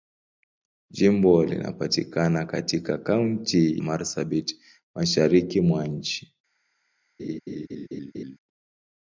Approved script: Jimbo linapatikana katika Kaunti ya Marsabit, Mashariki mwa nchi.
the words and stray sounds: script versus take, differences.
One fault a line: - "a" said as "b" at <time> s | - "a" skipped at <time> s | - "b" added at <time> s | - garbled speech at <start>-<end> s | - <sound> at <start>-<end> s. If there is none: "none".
- "ya" skipped at 3.8 s
- laugh at 7.2-8.4 s